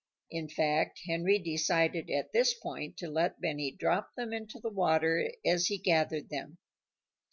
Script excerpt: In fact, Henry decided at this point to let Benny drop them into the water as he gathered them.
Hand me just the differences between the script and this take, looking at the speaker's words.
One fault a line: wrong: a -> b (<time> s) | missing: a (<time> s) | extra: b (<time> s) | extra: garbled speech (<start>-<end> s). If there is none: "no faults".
no faults